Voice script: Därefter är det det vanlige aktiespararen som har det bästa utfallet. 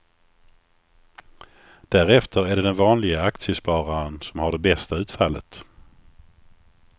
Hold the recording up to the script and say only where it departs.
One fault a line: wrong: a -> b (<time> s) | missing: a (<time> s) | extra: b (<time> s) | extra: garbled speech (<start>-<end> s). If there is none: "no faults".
wrong: det -> den (2.6 s)